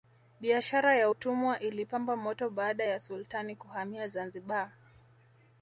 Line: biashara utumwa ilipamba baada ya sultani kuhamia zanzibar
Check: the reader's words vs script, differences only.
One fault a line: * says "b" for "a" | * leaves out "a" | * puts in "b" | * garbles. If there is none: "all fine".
* puts in "ya"
* puts in "moto"